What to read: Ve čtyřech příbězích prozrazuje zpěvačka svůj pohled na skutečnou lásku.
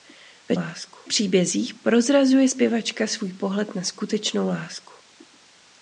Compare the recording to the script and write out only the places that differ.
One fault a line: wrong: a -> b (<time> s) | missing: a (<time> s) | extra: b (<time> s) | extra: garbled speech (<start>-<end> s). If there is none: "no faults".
wrong: čtyřech -> lásku (0.5 s)